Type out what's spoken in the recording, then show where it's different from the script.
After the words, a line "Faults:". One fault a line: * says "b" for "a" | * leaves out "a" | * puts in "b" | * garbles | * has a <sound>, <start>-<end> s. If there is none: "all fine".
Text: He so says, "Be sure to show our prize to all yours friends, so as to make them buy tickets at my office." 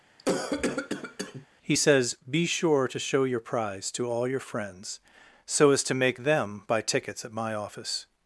He says, "Be sure to show your prize to all your friends, so as to make them buy tickets at my office."
Faults:
* has a cough, 0.2-1.5 s
* leaves out "so"
* says "your" for "our"
* says "your" for "yours"